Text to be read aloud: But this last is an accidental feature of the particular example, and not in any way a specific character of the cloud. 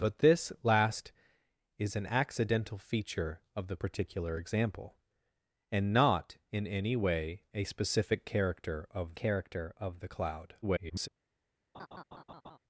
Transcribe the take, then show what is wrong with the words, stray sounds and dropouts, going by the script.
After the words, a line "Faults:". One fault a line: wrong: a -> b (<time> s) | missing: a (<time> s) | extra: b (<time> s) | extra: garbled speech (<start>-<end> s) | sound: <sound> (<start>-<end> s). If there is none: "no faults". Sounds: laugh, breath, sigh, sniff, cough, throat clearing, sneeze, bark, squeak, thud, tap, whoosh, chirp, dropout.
But this last is an accidental feature of the particular example, and not in any way a specific character of character of the cloud. [garbled]
Faults:
extra: character of (9.1 s)
extra: garbled speech (10.6-11.1 s)
sound: laugh (11.7-12.6 s)